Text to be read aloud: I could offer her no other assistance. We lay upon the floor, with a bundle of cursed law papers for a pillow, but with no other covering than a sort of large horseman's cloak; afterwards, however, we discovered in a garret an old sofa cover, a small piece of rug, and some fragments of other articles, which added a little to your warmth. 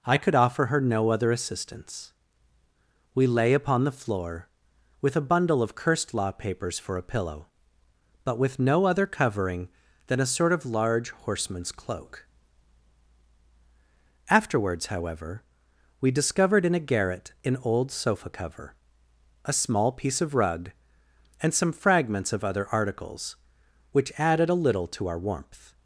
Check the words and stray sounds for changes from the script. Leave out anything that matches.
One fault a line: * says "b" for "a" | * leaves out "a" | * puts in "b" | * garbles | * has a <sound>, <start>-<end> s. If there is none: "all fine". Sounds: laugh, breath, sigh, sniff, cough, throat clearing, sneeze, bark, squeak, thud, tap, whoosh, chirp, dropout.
* says "our" for "your"